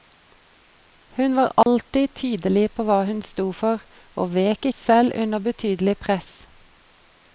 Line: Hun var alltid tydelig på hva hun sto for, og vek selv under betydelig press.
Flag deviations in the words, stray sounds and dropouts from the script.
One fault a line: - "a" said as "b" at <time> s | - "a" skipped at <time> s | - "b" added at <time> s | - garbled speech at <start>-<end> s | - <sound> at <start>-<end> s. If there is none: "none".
- dropout at 1.6-1.7 s